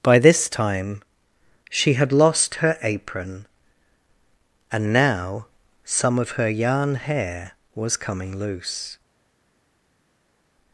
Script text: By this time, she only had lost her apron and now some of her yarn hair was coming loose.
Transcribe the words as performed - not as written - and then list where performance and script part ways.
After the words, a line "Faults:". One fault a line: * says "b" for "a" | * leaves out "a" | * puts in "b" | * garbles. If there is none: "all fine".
By this time, she had lost her apron and now some of her yarn hair was coming loose.
Faults:
* leaves out "only"